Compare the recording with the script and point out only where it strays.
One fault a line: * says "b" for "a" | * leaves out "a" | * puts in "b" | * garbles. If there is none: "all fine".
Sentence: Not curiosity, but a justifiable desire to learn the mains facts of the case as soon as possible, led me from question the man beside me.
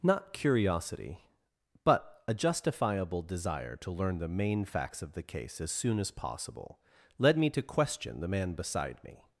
* says "main" for "mains"
* says "to" for "from"